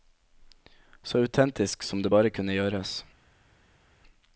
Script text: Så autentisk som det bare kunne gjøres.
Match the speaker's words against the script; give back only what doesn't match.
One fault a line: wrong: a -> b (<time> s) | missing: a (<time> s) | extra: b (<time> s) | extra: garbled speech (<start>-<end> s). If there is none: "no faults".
no faults